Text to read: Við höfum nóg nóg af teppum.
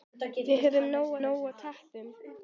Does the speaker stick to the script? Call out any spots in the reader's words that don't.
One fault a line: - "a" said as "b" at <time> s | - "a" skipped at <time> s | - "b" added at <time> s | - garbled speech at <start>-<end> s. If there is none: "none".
none